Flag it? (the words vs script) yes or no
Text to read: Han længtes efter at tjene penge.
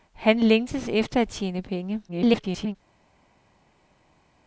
yes